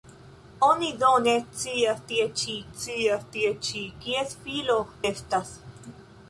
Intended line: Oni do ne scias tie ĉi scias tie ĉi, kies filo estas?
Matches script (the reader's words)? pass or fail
pass